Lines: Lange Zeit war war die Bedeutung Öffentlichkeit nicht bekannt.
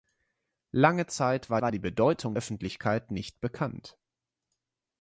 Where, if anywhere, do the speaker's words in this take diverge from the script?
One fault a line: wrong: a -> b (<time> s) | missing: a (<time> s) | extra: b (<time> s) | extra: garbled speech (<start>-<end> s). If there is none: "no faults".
no faults